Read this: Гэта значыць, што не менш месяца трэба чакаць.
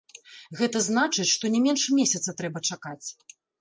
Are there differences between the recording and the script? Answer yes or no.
no